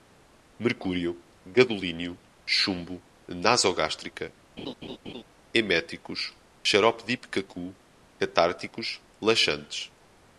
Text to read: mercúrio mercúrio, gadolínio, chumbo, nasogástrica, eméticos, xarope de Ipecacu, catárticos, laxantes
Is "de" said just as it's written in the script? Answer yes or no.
yes